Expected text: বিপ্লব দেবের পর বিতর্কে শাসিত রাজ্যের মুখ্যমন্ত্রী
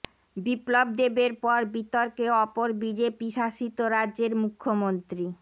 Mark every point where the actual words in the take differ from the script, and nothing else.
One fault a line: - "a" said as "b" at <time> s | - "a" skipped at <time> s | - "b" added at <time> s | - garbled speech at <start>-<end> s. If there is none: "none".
- "অপর বিজেপি" added at 2.4 s